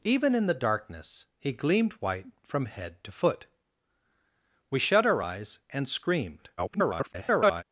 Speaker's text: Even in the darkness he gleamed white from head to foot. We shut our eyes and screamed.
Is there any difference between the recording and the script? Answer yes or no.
yes